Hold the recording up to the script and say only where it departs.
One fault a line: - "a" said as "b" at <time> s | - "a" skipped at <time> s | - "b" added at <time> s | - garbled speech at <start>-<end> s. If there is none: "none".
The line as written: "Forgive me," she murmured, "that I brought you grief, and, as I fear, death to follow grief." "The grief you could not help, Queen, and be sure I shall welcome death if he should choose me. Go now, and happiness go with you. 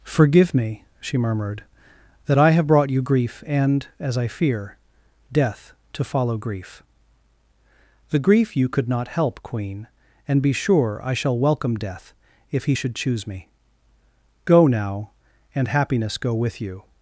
- "have" added at 2.5 s